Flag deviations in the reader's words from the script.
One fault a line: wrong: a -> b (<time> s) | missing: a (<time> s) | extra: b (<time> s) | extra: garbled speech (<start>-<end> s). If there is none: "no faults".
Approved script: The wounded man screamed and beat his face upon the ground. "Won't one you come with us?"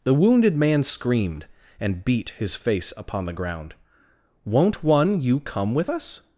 no faults